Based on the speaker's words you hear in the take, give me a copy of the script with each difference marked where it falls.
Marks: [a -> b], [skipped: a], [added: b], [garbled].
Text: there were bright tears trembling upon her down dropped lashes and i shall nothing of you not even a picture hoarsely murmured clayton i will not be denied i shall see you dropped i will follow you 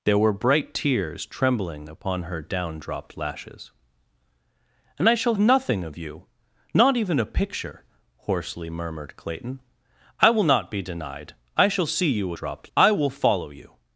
there were bright tears trembling upon her down dropped lashes and i shall nothing of you not even a picture hoarsely murmured clayton i will not be denied i shall see you dropped i will follow you